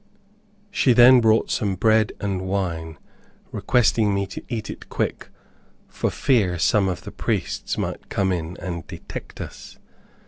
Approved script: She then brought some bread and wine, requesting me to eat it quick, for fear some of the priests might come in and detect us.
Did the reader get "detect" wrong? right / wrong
right